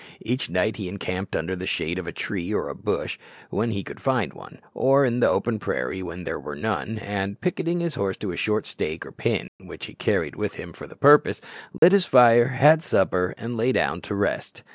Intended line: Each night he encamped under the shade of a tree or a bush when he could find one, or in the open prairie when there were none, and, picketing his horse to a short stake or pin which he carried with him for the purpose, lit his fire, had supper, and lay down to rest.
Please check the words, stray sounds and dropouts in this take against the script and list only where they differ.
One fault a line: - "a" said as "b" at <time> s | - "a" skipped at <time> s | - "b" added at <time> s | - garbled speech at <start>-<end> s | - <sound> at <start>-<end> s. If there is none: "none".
- dropout at 9.5-9.6 s
- dropout at 11.8-11.8 s